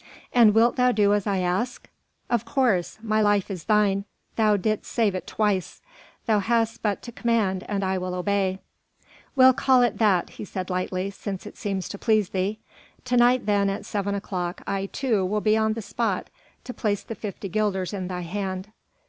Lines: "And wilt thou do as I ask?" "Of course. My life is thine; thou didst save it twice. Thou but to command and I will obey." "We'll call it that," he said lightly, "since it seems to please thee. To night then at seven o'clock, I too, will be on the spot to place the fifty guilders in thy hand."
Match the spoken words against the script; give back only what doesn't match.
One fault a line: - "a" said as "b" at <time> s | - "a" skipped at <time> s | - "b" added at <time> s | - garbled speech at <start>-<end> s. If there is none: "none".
- "hast" added at 6.4 s